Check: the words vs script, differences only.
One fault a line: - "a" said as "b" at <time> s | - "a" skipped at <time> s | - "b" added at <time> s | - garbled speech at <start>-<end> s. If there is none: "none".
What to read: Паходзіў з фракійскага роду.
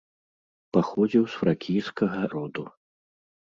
none